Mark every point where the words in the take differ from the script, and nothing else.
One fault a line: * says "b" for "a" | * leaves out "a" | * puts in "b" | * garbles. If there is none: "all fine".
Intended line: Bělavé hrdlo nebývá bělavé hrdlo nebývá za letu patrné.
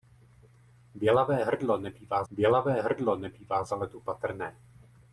all fine